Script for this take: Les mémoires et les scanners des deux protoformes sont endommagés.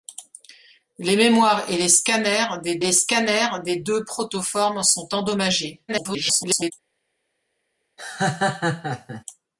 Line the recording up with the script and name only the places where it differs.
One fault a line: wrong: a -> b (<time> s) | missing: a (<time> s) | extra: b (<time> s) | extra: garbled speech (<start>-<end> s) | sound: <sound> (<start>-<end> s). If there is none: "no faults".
extra: les scanners des (2.8 s)
extra: garbled speech (5.9-6.7 s)
sound: laugh (8.0-9.2 s)